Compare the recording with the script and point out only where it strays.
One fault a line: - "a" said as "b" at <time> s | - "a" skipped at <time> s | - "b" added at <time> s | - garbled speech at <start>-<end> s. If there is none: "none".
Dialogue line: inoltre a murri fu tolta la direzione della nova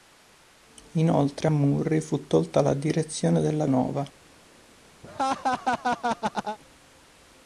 none